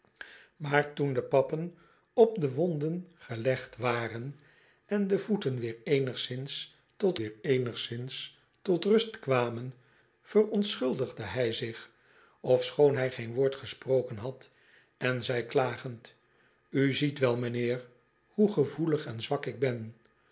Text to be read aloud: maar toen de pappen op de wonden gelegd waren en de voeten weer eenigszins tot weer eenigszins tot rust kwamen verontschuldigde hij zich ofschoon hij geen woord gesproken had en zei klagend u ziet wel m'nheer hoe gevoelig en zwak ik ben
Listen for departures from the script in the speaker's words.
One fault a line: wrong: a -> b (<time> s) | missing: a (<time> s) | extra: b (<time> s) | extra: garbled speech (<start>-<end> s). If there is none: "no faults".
no faults